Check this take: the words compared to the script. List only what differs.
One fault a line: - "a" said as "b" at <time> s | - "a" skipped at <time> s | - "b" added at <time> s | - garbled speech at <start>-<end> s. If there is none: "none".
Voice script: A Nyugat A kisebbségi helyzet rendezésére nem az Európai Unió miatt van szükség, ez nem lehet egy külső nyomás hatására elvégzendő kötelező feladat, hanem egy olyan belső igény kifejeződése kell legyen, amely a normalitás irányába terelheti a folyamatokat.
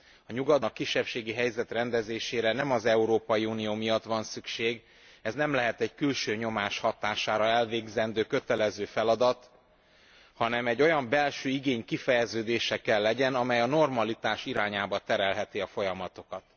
none